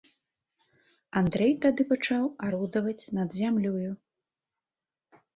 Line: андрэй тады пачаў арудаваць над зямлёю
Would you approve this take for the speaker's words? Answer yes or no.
yes